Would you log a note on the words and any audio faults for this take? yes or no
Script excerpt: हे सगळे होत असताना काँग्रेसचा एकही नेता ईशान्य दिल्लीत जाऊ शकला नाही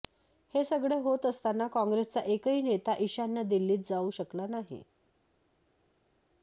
no